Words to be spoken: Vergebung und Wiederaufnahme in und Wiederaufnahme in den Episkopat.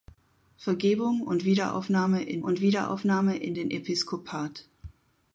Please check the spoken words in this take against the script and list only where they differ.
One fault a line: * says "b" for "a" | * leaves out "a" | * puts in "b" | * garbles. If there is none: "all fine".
all fine